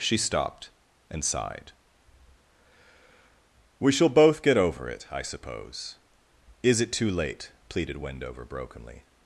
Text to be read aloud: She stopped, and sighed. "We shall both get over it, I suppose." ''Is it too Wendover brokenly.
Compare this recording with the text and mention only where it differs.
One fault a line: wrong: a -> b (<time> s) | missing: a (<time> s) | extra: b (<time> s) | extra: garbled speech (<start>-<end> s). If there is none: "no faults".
extra: late pleaded (7.1 s)